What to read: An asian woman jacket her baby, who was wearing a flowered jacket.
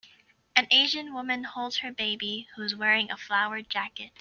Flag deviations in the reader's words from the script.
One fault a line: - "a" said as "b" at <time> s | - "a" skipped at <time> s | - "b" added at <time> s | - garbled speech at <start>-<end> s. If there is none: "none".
- "jacket" said as "holds" at 1.4 s
- "was" said as "is" at 2.6 s